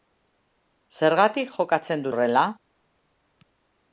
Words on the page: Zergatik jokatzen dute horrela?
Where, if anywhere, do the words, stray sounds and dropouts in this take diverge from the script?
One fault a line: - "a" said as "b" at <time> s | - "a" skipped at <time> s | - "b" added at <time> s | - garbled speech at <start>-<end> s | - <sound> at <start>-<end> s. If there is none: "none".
- "dute" skipped at 2.1 s